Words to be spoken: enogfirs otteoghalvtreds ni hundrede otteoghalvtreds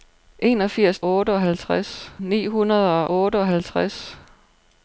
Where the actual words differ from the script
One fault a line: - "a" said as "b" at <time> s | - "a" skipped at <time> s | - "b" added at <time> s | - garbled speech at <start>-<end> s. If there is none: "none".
none